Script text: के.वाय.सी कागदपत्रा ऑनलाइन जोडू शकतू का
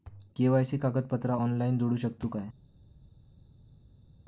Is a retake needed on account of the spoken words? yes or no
no